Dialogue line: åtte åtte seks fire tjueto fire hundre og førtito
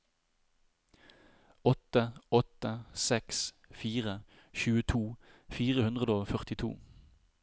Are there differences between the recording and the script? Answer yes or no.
no